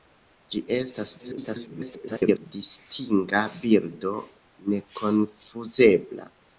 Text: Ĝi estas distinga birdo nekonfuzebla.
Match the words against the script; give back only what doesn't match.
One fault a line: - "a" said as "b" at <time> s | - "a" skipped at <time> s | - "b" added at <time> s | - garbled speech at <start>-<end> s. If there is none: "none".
- garbled speech at 1.2-2.5 s